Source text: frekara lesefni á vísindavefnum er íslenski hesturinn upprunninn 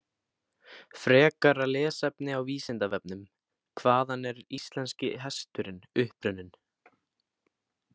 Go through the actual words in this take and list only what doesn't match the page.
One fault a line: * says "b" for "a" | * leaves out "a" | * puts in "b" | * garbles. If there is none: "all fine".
* puts in "hvaðan"